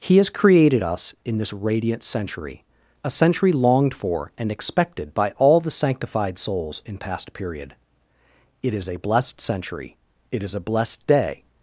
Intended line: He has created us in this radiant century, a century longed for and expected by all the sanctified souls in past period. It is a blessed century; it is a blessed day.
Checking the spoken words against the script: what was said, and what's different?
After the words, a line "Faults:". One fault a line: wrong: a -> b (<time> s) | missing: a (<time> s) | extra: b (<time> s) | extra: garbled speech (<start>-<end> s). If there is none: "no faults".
He has created us in this radiant century, a century longed for and expected by all the sanctified souls in past period. It is a blessed century; it is a blessed day.
Faults:
no faults